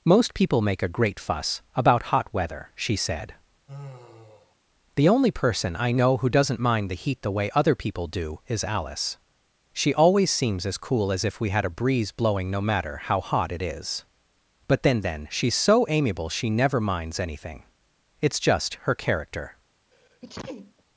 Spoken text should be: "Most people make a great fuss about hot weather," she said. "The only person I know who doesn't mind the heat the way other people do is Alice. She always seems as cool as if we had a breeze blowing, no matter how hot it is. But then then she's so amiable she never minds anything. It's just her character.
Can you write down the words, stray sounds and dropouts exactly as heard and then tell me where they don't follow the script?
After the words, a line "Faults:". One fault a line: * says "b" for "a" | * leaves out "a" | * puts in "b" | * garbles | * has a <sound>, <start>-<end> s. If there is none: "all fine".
"Most people make a great fuss about hot weather," she said. "The only person I know who doesn't mind the heat the way other people do is Alice. She always seems as cool as if we had a breeze blowing, no matter how hot it is. But then then she's so amiable she never minds anything. It's just her character.
Faults:
* has a sigh, 3.7-4.6 s
* has a sneeze, 19.9-20.8 s